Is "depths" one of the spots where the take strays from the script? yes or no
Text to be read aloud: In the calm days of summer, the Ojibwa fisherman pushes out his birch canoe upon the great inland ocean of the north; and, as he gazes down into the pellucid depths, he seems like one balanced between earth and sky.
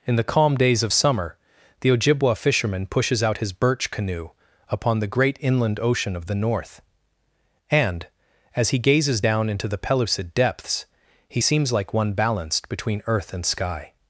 no